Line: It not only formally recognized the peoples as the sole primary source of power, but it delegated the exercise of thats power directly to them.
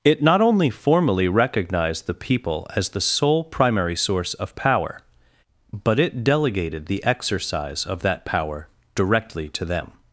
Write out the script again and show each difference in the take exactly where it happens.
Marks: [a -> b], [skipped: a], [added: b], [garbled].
It not only formally recognized the [peoples -> people] as the sole primary source of power, but it delegated the exercise of [thats -> that] power directly to them.